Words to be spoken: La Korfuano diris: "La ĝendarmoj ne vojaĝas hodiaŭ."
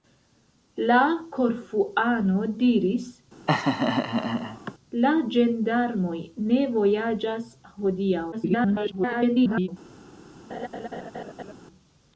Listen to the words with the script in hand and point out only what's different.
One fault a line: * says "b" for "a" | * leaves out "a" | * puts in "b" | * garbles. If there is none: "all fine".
* garbles